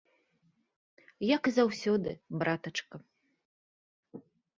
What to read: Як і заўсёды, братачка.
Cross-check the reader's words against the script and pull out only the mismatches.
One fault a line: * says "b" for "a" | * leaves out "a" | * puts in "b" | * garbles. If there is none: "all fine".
all fine